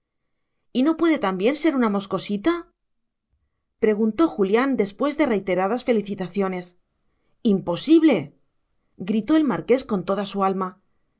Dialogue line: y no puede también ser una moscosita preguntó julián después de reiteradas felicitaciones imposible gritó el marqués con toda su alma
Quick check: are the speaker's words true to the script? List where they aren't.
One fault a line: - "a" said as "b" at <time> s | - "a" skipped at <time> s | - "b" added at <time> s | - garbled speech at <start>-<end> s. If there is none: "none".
none